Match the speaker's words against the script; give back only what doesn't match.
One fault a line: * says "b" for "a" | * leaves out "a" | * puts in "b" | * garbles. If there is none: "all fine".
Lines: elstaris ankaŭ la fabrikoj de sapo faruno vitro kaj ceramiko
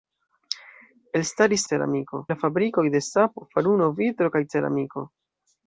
* says "ceramiko" for "ankaŭ"